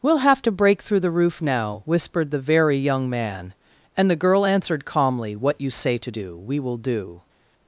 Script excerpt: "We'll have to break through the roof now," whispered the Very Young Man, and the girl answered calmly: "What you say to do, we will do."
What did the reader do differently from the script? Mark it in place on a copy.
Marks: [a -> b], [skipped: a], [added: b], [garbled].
"We'll have to break through the roof now," whispered the Very Young Man, and the girl answered calmly: "What you say to do, we will do."